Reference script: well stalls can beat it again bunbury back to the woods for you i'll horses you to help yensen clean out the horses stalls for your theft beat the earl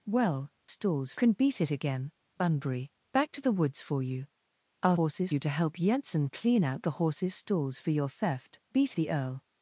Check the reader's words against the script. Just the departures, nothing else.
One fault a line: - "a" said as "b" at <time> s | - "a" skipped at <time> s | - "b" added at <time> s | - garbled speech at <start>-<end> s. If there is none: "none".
none